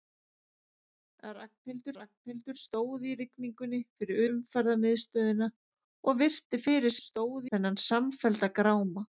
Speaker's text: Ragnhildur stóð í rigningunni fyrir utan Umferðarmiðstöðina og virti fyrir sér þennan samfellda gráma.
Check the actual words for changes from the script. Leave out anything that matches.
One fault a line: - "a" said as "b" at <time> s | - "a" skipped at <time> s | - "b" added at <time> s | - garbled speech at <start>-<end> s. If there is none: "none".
- "ragnhildur" added at 2.0 s
- "utan" skipped at 4.2 s
- "sér" said as "stóð" at 7.0 s